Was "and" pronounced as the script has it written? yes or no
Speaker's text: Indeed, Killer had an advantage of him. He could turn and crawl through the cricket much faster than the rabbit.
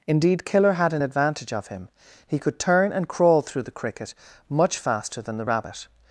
yes